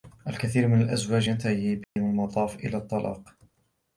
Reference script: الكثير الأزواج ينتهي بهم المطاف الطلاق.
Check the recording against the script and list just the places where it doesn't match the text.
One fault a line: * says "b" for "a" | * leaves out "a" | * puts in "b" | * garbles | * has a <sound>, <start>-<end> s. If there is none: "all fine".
* puts in "من"
* has a dropout, 1.8-2.0 s
* puts in "إلى"